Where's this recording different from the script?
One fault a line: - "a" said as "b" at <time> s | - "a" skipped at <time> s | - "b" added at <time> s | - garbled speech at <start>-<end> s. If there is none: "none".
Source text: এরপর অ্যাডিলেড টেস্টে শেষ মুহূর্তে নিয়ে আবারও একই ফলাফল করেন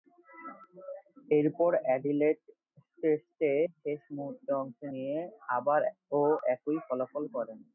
- "অংশ" added at 4.6 s